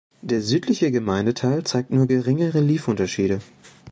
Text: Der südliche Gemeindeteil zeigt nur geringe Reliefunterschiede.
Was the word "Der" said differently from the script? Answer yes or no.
no